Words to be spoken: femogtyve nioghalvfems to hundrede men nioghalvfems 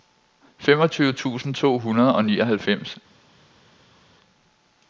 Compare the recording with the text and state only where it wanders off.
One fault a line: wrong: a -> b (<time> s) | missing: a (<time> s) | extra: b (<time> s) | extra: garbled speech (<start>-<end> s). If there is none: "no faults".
wrong: nioghalvfems -> tusind (1.1 s)
wrong: men -> og (2.1 s)